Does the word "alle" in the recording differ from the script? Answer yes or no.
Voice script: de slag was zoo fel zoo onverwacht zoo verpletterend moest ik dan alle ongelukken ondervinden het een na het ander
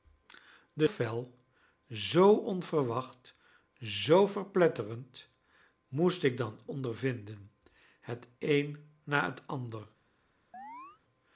yes